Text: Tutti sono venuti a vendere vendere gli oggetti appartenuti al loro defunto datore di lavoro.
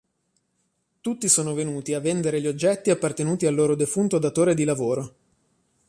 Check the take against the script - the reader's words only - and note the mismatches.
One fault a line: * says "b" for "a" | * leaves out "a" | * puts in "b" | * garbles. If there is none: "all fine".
* leaves out "vendere"